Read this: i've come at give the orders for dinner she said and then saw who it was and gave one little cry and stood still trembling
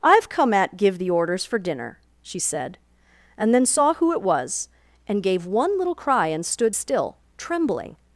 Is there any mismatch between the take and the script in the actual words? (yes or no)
no